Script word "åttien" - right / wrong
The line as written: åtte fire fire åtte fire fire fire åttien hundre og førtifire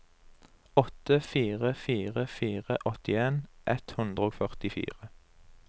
wrong